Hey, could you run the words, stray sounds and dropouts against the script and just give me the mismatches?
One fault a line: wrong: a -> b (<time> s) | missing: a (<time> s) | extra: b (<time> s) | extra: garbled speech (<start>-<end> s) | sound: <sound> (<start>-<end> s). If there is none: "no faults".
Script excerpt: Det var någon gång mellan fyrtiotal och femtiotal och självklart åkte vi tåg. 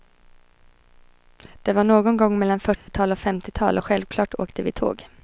sound: dropout (2.8-2.9 s)